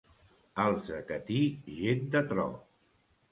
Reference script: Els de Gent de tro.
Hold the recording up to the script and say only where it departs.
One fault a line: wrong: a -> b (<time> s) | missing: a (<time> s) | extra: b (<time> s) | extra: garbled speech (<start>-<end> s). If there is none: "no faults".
extra: Catí (1.1 s)